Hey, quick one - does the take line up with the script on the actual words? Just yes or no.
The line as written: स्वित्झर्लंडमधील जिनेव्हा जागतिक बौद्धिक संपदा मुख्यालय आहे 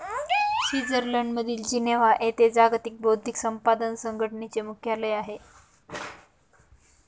no